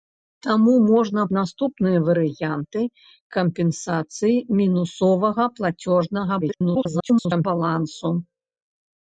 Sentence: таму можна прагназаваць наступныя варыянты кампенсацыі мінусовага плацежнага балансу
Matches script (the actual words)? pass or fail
fail